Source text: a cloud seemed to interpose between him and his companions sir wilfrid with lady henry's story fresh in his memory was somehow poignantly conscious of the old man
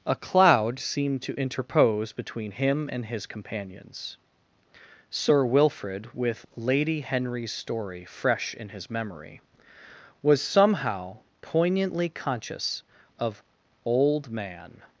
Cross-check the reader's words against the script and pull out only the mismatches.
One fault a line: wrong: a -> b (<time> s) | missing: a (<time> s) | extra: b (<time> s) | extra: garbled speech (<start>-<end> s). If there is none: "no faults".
missing: the (13.4 s)